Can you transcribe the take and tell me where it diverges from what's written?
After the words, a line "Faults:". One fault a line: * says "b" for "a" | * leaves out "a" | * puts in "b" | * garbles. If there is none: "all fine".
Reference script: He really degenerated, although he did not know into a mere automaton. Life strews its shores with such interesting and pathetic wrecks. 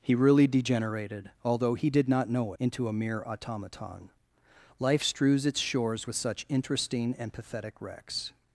He really degenerated, although he did not know into a mere automaton. Life strews its shores with such interesting and pathetic wrecks.
Faults:
all fine